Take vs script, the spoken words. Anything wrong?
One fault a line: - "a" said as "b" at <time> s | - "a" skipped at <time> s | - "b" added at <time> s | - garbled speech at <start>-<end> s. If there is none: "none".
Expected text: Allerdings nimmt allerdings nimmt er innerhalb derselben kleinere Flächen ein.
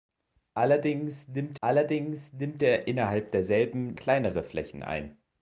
none